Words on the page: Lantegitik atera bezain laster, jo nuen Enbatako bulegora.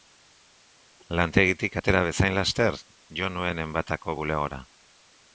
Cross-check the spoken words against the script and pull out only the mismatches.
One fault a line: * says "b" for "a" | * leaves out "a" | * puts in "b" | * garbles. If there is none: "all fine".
all fine